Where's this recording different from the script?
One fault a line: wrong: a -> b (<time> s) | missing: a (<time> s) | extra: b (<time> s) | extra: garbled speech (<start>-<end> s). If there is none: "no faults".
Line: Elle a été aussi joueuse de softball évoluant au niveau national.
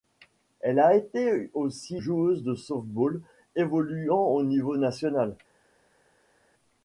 no faults